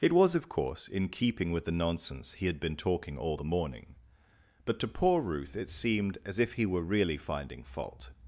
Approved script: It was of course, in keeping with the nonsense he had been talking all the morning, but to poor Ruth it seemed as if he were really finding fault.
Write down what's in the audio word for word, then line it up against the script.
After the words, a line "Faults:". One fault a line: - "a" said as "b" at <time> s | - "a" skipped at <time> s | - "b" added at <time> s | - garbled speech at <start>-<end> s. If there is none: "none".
It was of course, in keeping with the nonsense he had been talking all the morning, but to poor Ruth it seemed as if he were really finding fault.
Faults:
none